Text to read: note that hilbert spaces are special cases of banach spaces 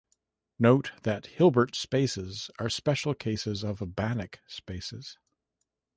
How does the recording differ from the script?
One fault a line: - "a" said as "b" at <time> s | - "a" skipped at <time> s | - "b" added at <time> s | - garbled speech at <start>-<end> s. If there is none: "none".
none